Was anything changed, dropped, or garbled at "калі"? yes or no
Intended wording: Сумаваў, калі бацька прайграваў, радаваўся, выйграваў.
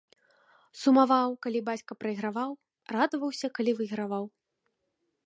no